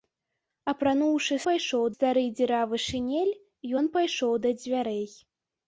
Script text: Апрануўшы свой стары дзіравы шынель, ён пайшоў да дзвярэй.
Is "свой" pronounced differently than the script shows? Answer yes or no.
yes